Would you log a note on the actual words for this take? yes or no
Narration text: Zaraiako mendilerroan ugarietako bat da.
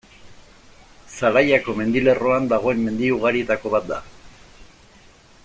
yes